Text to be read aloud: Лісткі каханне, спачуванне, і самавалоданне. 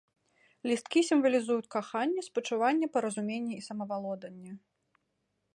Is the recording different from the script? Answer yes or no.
yes